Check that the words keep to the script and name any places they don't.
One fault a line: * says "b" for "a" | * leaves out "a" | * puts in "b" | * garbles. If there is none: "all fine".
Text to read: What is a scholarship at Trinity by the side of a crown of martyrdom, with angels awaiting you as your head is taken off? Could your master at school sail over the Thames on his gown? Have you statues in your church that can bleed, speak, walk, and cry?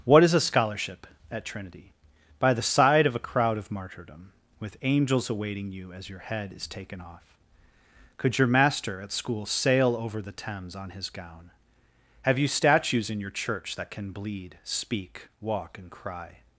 * says "crowd" for "crown"